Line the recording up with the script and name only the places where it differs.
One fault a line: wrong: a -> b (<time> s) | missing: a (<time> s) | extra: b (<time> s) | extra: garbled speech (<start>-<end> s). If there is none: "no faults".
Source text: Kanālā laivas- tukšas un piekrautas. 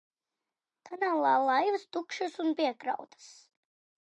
no faults